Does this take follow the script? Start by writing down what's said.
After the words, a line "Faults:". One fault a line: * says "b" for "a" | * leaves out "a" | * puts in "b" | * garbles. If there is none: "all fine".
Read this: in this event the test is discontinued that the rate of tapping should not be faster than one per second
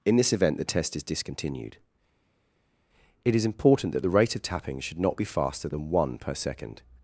in this event the test is discontinued it is important that the rate of tapping should not be faster than one per second
Faults:
* puts in "it is important"